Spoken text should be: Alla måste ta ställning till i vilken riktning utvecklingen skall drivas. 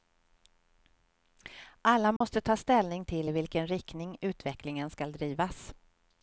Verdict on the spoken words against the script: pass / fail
pass